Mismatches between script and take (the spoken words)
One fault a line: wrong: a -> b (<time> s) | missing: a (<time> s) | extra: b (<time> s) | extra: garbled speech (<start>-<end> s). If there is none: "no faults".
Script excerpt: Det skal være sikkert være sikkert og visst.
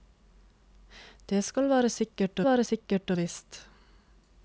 no faults